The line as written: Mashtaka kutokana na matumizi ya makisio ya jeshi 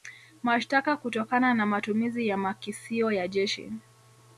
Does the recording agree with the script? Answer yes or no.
yes